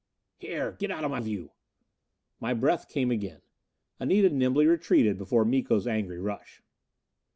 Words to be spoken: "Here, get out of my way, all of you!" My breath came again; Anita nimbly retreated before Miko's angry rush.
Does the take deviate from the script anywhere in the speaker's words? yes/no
yes